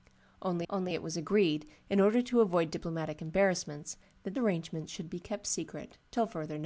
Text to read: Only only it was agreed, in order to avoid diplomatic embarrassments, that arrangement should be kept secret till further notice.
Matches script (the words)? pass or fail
pass